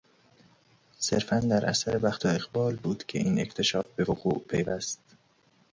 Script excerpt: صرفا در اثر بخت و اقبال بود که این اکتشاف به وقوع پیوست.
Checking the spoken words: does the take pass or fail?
pass